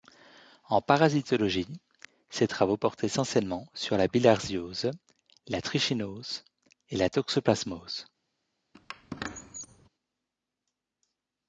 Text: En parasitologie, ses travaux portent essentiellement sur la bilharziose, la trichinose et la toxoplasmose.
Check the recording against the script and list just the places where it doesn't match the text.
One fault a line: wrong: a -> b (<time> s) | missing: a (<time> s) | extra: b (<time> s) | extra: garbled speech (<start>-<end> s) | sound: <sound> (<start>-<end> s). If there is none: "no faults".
sound: squeak (8.7-9.9 s)